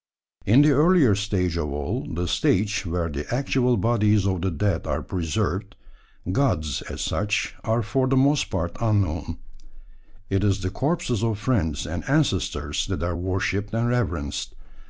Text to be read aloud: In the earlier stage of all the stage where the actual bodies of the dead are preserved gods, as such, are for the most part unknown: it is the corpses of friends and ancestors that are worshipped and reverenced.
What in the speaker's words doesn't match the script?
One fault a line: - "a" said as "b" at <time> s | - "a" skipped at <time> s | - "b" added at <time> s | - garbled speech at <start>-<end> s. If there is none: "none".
none